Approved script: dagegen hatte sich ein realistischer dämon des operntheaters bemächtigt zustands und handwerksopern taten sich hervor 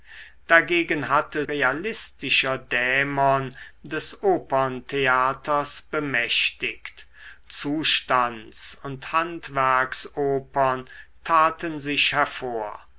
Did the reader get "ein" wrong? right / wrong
wrong